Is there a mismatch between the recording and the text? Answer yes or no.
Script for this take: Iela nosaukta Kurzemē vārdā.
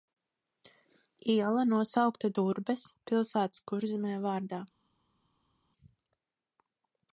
yes